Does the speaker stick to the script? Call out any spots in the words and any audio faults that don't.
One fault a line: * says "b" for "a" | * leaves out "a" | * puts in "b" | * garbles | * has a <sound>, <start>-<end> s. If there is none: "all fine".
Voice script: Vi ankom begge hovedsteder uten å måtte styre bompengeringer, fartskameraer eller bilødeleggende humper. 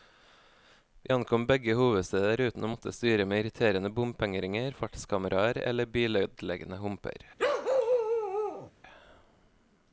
* puts in "med irriterende"
* has a bark, 7.4-8.7 s